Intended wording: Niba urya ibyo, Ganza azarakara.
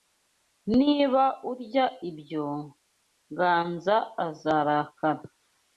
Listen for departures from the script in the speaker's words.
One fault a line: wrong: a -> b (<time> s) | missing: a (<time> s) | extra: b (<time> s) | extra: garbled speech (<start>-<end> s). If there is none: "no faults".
no faults